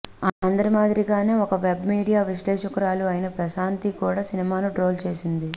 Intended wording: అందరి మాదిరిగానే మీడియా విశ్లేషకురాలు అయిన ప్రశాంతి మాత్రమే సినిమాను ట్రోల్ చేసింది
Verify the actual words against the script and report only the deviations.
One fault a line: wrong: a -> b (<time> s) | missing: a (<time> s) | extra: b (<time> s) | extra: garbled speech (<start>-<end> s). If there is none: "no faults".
extra: ఒక వెబ్ (1.4 s)
wrong: మాత్రమే -> కూడా (4.0 s)